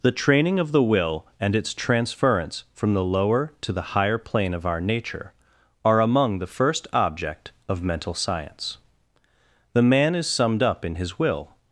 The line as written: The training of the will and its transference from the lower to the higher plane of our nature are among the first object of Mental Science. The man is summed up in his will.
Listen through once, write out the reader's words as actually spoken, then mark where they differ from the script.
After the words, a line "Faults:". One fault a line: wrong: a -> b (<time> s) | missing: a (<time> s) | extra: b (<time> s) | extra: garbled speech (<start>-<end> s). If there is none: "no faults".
The training of the will and its transference from the lower to the higher plane of our nature are among the first object of Mental Science. The man is summed up in his will.
Faults:
no faults